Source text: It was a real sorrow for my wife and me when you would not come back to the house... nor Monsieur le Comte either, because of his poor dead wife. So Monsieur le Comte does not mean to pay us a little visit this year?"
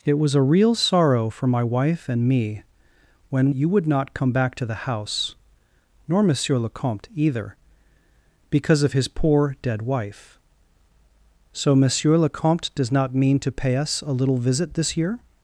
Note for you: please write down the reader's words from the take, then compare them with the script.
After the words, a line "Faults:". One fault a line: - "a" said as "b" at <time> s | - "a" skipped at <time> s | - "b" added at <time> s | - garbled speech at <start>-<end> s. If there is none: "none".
It was a real sorrow for my wife and me when you would not come back to the house... nor Monsieur le Comte either, because of his poor dead wife. So Monsieur le Comte does not mean to pay us a little visit this year?"
Faults:
none